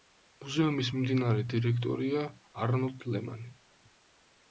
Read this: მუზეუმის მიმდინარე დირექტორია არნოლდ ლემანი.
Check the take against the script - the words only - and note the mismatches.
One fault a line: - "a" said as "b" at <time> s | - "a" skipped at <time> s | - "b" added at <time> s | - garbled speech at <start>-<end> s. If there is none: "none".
none